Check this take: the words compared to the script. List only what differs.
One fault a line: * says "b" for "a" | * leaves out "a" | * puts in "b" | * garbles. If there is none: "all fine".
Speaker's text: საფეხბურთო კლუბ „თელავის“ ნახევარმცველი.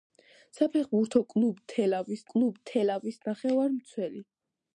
* puts in "კლუბ თელავის"